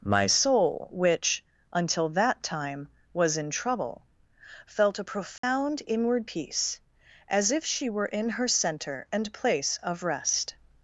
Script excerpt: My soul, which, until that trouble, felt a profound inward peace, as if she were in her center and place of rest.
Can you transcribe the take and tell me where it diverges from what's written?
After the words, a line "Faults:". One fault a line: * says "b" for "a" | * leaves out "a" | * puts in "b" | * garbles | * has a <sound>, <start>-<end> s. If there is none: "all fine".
My soul, which, until that time was in trouble, felt a profound inward peace, as if she were in her center and place of rest.
Faults:
* puts in "time was in"
* has a dropout, 5.4-5.4 s